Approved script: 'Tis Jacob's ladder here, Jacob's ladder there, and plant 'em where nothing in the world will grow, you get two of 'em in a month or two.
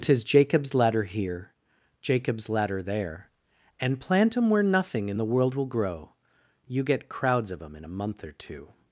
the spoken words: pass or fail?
fail